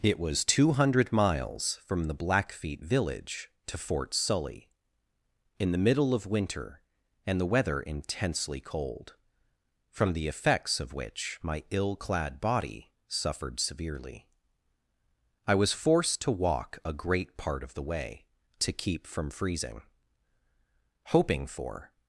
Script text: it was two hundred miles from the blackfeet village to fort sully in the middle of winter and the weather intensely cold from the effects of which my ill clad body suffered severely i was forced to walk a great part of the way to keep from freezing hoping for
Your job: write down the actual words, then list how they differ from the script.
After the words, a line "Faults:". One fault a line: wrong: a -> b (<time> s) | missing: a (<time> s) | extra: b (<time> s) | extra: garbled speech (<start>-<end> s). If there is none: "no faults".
it was two hundred miles from the blackfeet village to fort sully in the middle of winter and the weather intensely cold from the effects of which my ill clad body suffered severely i was forced to walk a great part of the way to keep from freezing hoping for
Faults:
no faults